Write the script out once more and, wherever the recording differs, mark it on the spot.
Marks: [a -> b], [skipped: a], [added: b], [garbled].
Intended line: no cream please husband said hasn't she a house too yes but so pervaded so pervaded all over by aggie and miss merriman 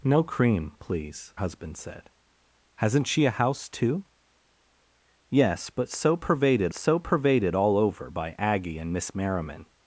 no cream please husband said hasn't she a house too yes but so pervaded so pervaded all over by aggie and miss merriman